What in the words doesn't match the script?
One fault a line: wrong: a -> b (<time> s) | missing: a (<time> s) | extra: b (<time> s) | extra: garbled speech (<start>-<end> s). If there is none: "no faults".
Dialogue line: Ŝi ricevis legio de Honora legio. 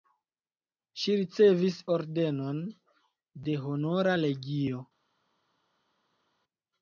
wrong: legio -> ordenon (2.0 s)